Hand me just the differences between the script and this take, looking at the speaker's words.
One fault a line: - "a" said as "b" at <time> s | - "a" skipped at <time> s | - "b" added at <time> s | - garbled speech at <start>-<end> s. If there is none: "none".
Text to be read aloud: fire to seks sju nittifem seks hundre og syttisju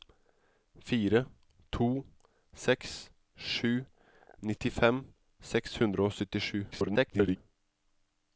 - garbled speech at 6.7-7.4 s